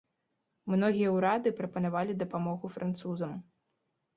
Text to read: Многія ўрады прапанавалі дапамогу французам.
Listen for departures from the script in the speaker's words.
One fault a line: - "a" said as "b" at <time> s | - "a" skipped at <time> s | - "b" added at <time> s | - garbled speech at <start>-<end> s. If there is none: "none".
none